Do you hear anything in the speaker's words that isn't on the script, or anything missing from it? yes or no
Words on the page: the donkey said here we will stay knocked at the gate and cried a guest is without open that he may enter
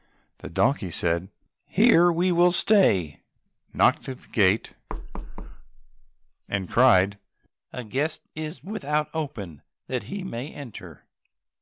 no